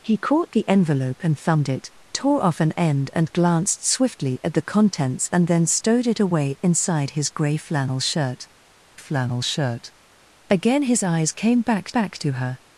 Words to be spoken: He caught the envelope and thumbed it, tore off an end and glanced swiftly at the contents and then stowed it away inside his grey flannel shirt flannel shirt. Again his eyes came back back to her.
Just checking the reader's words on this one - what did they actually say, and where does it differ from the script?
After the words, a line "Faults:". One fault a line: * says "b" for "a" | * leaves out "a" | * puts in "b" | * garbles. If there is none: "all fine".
He caught the envelope and thumbed it, tore off an end and glanced swiftly at the contents and then stowed it away inside his grey flannel shirt flannel shirt. Again his eyes came back back to her.
Faults:
all fine